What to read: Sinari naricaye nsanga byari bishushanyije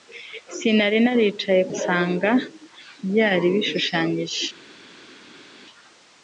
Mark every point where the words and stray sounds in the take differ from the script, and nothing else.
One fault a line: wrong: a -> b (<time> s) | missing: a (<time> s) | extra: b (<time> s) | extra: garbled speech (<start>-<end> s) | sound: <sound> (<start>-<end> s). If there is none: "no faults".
no faults